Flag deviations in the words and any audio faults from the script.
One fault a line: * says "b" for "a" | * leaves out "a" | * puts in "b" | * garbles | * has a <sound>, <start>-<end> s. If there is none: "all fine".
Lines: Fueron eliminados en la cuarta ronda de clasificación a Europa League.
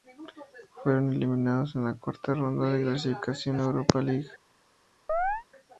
* has a chirp, 5.1-5.4 s